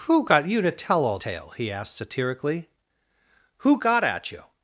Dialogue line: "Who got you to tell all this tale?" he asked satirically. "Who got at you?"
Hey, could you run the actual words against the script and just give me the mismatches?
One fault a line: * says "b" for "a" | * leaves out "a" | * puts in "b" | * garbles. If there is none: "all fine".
* leaves out "this"